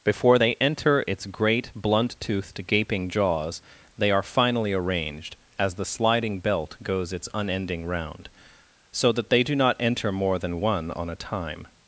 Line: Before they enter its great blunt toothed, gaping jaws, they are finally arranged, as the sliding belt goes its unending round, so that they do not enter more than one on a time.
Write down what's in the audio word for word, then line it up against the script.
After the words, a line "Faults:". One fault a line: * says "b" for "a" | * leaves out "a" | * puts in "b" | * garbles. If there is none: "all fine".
Before they enter its great blunt toothed, gaping jaws, they are finally arranged, as the sliding belt goes its unending round, so that they do not enter more than one on a time.
Faults:
all fine